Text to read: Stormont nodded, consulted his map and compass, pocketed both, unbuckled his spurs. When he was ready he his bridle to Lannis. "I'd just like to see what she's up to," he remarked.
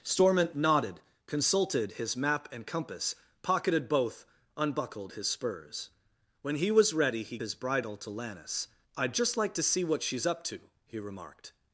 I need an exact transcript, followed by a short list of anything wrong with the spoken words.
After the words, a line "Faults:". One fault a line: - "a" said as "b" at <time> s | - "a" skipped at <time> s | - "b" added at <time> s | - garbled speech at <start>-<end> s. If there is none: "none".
Stormont nodded, consulted his map and compass, pocketed both, unbuckled his spurs. When he was ready he his bridle to Lannis. "I'd just like to see what she's up to," he remarked.
Faults:
none